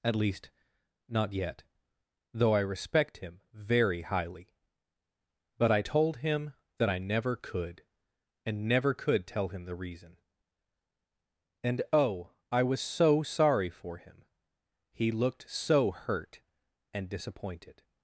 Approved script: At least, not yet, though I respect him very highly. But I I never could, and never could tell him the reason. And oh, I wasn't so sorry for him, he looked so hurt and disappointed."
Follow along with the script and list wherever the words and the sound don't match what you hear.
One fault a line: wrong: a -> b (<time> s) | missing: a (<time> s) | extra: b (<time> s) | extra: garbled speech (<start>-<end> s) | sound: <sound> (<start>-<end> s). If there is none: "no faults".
extra: told him that (5.8 s)
wrong: wasn't -> was (12.6 s)